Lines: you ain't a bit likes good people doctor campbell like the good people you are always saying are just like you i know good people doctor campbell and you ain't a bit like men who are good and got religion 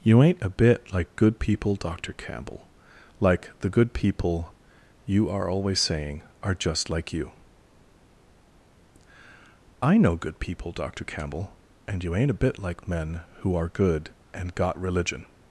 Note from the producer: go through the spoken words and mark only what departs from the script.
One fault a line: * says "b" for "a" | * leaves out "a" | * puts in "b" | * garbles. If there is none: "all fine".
* says "like" for "likes"